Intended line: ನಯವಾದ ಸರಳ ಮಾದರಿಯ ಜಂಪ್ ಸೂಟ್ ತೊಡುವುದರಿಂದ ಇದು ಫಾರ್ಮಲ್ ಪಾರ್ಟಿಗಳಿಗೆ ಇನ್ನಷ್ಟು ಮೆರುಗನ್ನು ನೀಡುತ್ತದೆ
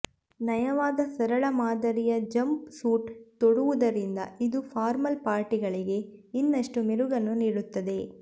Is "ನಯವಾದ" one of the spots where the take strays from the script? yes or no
no